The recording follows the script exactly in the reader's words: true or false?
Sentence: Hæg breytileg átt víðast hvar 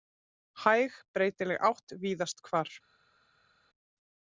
true